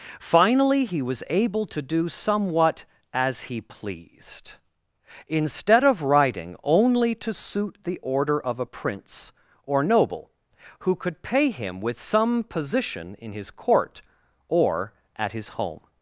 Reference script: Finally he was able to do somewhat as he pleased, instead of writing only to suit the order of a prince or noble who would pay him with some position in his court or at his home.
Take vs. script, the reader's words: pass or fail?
fail